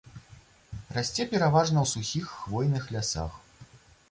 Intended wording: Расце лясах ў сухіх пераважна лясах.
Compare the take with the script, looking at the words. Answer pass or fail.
fail